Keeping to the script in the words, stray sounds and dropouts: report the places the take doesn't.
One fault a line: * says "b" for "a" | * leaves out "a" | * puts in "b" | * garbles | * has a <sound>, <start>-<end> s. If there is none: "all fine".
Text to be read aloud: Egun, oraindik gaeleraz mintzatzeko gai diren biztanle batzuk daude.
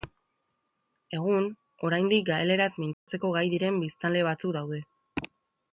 * has a dropout, 2.9-3.1 s